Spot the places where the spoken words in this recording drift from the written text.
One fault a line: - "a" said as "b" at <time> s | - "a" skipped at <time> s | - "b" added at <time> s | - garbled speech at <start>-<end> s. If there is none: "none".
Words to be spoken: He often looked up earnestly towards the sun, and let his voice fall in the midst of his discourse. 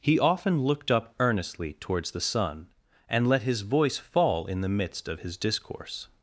none